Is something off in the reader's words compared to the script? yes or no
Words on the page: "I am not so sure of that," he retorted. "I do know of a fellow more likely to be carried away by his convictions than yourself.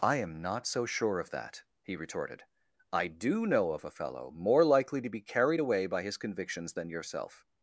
no